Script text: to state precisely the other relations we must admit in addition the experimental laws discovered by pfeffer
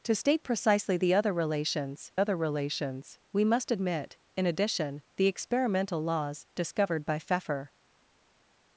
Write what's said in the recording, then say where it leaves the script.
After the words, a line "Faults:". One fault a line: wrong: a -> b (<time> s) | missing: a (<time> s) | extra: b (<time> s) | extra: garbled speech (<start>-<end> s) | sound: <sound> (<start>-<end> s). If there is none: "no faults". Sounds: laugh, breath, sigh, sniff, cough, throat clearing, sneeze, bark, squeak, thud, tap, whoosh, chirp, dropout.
to state precisely the other relations other relations we must admit in addition the experimental laws discovered by pfeffer
Faults:
extra: other relations (2.2 s)